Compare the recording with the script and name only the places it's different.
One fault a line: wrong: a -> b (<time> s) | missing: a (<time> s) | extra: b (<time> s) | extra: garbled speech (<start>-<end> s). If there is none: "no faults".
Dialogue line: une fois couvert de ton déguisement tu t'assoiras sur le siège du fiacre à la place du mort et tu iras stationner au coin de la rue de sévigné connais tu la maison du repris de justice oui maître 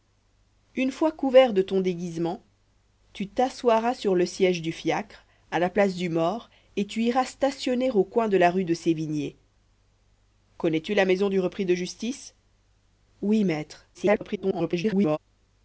extra: garbled speech (13.9-15.2 s)